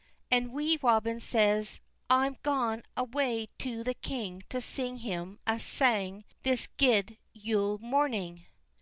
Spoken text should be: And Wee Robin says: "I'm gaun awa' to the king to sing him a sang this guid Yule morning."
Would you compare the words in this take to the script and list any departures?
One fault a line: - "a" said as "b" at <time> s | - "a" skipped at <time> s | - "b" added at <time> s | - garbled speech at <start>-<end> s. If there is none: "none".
none